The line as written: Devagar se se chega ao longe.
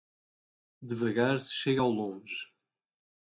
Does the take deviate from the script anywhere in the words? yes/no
yes